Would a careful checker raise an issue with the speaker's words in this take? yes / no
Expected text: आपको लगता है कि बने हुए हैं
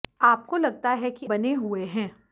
no